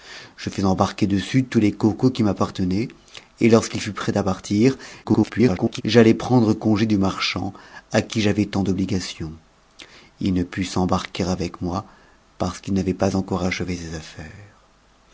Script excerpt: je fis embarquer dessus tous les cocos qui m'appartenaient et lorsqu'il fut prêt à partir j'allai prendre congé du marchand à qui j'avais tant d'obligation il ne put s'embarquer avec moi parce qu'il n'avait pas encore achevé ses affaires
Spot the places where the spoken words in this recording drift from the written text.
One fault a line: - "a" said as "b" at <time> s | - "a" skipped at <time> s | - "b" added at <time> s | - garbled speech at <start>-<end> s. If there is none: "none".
- garbled speech at 5.0-5.8 s